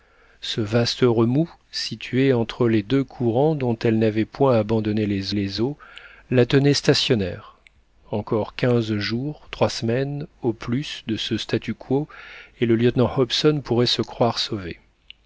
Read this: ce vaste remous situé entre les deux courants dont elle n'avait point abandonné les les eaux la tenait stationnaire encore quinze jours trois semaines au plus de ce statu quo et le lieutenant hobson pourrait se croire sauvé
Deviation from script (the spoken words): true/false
false